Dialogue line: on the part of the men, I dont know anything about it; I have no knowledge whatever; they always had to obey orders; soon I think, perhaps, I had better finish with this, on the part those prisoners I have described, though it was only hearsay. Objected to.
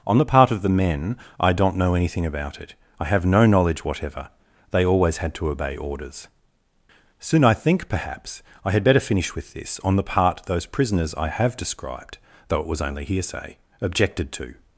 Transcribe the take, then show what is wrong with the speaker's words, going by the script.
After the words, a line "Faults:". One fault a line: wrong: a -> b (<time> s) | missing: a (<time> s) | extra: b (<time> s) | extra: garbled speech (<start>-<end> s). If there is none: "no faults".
on the part of the men, I dont know anything about it; I have no knowledge whatever; they always had to obey orders; soon I think, perhaps, I had better finish with this, on the part those prisoners I have described, though it was only hearsay. Objected to.
Faults:
no faults